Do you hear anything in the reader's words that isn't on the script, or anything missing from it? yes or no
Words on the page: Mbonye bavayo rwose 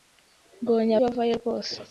no